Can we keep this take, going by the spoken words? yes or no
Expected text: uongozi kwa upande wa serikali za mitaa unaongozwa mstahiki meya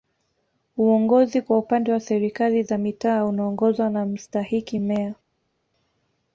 no